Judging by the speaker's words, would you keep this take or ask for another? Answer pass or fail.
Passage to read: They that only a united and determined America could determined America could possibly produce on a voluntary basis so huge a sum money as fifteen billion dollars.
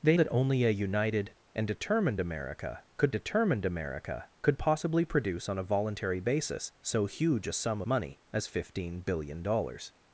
pass